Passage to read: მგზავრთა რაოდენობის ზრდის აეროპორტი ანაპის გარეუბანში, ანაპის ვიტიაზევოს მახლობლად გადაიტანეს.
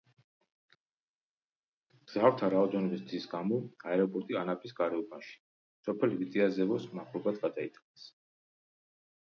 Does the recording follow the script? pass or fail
fail